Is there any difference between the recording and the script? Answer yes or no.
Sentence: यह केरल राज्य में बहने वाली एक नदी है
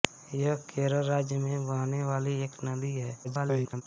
yes